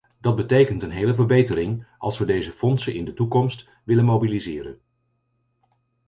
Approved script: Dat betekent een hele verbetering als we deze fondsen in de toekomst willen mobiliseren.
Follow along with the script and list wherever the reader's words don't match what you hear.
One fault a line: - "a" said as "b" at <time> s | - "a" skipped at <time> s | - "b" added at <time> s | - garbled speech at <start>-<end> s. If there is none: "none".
none